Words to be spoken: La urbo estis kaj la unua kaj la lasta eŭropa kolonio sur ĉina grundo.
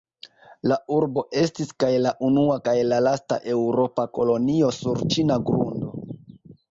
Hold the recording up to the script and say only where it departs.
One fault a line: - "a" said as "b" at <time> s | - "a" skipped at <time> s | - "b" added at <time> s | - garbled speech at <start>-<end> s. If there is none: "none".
none